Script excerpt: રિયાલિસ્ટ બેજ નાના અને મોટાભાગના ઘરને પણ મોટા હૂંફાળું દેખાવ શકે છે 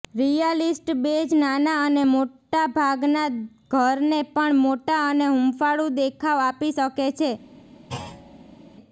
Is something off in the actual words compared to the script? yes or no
yes